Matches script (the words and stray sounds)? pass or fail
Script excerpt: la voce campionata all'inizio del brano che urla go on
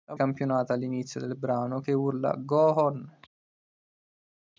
fail